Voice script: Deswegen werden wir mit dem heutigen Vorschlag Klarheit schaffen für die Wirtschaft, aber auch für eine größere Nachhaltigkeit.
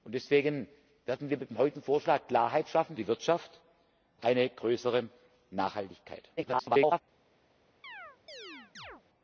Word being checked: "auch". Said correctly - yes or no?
no